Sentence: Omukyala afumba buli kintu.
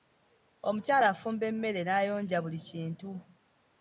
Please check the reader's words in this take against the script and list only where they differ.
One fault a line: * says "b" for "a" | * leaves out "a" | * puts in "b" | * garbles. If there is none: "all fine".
* puts in "emmere n'ayonja"